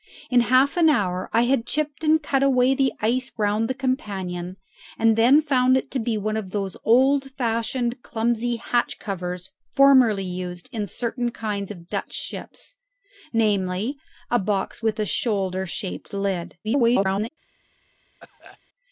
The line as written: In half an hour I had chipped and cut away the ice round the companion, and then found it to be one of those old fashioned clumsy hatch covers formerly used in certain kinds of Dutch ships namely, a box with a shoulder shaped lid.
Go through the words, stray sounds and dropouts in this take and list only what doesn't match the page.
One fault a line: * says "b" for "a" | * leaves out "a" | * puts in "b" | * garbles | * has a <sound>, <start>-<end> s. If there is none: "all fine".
* garbles
* has a cough, 18.2-18.6 s